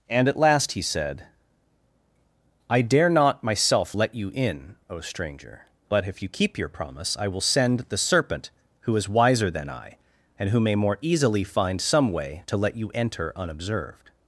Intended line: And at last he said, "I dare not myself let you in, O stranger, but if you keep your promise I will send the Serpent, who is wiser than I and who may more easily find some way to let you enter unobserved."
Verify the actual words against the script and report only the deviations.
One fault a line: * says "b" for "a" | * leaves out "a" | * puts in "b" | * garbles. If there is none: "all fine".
all fine